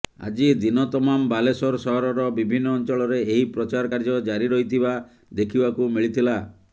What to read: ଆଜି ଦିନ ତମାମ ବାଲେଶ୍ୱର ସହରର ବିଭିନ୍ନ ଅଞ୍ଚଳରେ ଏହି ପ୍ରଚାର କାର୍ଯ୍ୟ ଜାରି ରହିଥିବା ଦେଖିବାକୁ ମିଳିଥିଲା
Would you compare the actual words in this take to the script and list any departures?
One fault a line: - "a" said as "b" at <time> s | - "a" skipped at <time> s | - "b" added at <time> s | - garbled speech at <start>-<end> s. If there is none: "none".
none